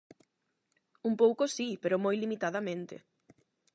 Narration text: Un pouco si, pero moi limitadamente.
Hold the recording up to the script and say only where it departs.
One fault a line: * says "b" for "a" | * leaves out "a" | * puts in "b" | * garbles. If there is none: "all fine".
all fine